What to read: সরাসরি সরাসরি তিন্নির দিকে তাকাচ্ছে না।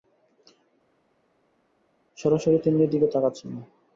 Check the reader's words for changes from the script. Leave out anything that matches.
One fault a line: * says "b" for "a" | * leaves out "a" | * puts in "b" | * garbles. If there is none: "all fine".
* leaves out "সরাসরি"